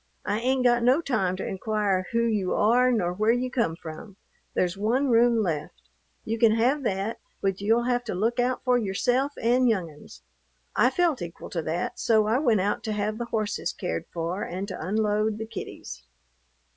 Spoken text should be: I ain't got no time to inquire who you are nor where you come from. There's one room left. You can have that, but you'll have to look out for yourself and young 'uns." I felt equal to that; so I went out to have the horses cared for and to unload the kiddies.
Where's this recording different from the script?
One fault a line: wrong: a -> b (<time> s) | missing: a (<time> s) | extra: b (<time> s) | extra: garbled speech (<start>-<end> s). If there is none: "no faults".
no faults